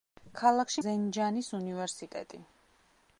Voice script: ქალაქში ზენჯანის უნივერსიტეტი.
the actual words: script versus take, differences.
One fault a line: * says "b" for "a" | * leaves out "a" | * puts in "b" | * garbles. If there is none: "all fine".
all fine